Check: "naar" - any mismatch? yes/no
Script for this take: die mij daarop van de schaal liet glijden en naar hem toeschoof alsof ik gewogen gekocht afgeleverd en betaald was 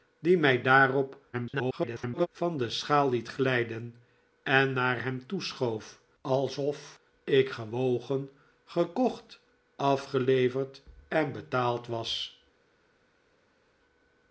no